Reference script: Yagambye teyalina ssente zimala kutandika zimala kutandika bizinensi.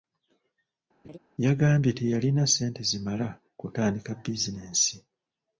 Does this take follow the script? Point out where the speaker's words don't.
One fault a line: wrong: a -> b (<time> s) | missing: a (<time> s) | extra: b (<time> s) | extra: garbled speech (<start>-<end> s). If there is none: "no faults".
missing: zimala kutandika (4.1 s)